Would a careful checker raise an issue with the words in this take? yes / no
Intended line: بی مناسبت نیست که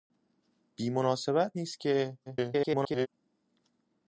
yes